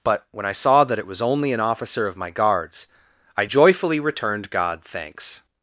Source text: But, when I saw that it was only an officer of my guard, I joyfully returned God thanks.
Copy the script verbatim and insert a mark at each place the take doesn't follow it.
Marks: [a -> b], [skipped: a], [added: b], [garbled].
But, when I saw that it was only an officer of my [guard, -> guards] I joyfully returned God thanks.